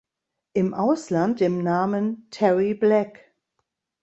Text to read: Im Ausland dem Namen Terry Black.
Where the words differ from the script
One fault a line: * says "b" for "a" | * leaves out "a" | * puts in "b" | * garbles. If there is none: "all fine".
all fine